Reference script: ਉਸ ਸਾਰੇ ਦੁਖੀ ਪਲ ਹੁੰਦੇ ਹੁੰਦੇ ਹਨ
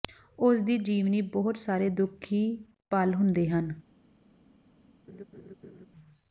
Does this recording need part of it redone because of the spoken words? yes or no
yes